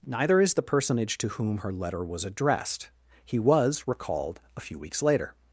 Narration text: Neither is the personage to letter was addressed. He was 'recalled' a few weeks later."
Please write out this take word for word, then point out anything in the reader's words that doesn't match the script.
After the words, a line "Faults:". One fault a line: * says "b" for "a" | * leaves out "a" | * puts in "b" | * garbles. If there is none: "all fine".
Neither is the personage to whom her letter was addressed. He was 'recalled' a few weeks later."
Faults:
* puts in "whom her"